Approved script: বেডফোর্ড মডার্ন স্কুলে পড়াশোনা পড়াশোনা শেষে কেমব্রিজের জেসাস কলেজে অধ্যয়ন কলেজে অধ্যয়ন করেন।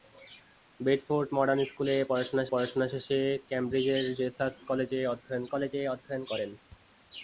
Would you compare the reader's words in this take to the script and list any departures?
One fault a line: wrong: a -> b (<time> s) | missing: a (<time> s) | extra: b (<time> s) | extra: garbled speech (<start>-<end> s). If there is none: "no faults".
no faults